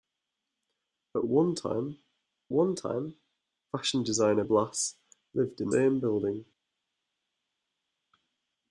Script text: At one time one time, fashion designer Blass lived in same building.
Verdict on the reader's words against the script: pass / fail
pass